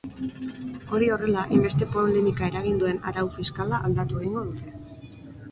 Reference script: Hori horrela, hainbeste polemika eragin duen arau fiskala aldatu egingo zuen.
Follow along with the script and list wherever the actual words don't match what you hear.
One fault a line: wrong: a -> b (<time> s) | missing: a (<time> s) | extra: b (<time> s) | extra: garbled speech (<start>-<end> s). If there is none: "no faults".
wrong: zuen -> dute (4.5 s)